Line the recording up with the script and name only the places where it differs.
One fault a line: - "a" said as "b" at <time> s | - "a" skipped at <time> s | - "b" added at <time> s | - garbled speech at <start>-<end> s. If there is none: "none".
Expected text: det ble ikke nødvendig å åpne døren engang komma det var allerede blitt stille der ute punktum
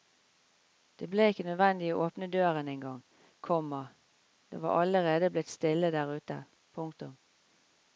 none